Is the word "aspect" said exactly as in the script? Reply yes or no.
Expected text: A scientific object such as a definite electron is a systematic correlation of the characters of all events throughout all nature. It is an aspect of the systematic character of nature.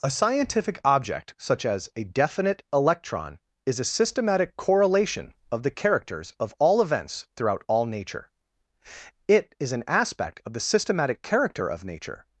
yes